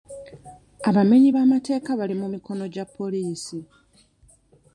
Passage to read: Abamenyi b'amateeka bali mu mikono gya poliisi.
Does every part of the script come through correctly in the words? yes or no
yes